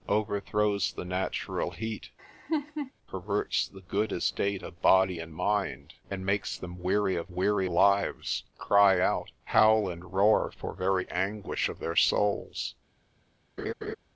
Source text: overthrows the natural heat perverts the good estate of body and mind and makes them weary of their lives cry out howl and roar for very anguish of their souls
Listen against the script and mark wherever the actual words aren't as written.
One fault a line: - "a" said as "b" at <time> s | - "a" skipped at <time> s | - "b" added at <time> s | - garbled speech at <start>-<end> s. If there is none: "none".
- "their" said as "weary" at 7.3 s